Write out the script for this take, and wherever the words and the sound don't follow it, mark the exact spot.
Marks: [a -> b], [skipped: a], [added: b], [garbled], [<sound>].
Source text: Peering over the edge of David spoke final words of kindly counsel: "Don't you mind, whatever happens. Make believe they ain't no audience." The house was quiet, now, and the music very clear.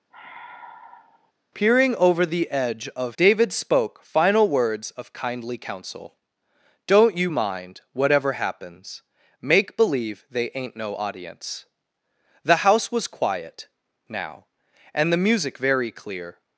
[sigh] Peering over the edge of David spoke final words of kindly counsel: "Don't you mind, whatever happens. Make believe they ain't no audience." The house was quiet, now, and the music very clear.